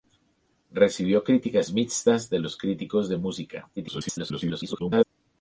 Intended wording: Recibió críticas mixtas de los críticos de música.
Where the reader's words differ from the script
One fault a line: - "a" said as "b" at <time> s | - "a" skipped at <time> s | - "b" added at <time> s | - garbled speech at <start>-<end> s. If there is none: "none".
- garbled speech at 3.8-5.1 s